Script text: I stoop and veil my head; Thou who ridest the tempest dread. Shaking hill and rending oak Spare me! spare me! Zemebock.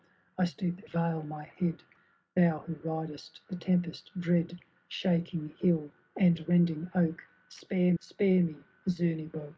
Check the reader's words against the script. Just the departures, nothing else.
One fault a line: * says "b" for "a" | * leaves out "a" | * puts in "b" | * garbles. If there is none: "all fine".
* leaves out "and"
* leaves out "me"